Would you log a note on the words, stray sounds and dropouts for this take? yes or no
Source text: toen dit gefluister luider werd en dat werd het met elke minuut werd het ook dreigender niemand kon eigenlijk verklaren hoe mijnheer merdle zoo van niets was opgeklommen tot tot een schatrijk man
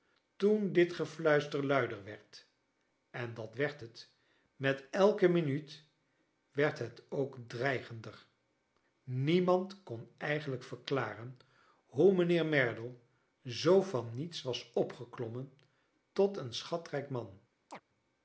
yes